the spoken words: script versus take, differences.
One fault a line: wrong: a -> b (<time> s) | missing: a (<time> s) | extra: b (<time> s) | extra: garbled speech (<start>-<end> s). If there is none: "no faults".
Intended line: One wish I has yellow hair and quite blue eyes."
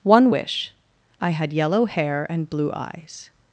wrong: has -> had (1.3 s)
missing: quite (2.5 s)